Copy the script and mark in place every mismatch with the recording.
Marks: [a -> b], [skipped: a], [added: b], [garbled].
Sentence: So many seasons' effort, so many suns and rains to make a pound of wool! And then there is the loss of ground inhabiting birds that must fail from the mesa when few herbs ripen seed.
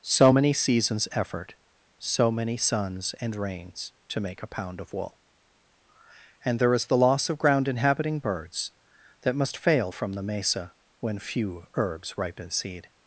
So many seasons' effort, so many suns and rains to make a pound of wool! And [skipped: then] there is the loss of ground inhabiting birds that must fail from the mesa when few herbs ripen seed.